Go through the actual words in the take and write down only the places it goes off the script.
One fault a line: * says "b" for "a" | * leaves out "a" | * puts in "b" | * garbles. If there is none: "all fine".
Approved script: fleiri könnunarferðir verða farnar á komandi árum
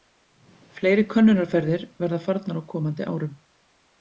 all fine